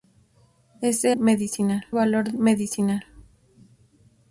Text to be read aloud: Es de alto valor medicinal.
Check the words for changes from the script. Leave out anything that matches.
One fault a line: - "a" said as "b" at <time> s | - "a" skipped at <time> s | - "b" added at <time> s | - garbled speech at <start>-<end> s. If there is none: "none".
- "alto" said as "medicinal" at 1.1 s